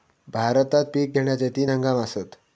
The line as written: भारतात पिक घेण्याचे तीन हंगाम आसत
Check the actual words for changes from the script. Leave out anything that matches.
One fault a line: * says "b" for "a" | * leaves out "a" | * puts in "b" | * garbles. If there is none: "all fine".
all fine